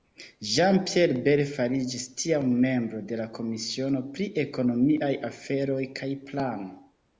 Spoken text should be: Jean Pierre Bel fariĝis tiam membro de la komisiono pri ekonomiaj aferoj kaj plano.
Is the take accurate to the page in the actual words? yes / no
yes